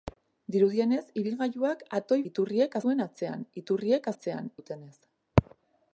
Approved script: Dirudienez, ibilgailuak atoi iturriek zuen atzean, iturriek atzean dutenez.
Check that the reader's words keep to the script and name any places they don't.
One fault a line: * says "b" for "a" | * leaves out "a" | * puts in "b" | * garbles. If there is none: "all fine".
all fine